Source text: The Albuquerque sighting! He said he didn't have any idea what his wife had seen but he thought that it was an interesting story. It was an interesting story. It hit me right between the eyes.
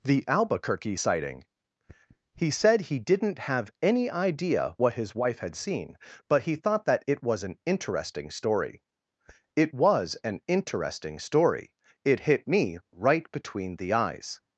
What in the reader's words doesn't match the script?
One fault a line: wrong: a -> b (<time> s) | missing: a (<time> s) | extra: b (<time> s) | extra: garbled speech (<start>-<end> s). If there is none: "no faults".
no faults